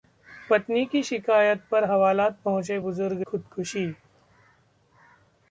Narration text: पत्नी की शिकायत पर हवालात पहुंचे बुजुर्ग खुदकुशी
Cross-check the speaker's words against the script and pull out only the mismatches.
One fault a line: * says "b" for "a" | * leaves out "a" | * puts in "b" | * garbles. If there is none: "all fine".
all fine